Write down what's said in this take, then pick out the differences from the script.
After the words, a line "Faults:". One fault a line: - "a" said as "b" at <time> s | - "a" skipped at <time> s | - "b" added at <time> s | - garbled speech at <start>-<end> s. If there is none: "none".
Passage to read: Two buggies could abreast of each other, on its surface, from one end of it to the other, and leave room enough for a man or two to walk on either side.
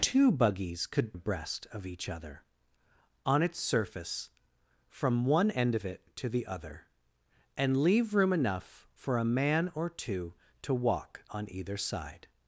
Two buggies could abreast of each other, on its surface, from one end of it to the other, and leave room enough for a man or two to walk on either side.
Faults:
none